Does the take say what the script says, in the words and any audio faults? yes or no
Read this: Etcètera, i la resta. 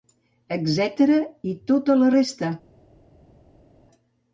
no